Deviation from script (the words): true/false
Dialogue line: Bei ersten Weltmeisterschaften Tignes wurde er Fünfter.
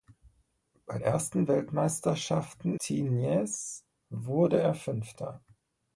false